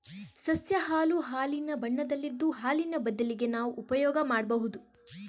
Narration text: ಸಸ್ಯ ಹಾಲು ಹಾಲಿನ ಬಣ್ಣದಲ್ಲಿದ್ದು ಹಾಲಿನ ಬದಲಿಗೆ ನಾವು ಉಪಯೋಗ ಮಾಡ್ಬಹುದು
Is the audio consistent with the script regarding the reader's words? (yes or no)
yes